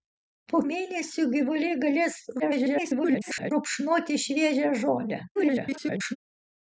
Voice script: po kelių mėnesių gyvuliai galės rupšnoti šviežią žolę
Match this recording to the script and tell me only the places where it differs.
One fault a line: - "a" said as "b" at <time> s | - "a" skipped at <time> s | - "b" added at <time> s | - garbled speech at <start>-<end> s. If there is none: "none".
- "kelių" skipped at 0.6 s
- garbled speech at 2.4-3.5 s
- garbled speech at 5.4-6.2 s